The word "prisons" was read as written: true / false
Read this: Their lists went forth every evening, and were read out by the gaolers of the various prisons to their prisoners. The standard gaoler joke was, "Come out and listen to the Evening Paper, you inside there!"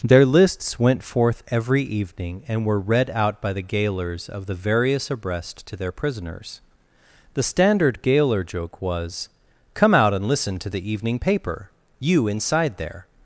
false